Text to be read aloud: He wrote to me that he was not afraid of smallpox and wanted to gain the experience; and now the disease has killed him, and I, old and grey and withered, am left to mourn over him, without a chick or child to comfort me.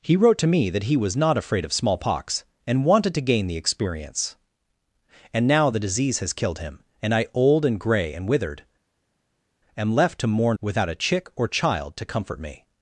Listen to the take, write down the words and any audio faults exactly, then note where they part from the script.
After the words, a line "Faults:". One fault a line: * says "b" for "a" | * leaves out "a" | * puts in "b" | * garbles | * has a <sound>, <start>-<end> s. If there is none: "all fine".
He wrote to me that he was not afraid of smallpox and wanted to gain the experience; and now the disease has killed him, and I, old and grey and withered, am left to mourn without a chick or child to comfort me.
Faults:
* leaves out "over him"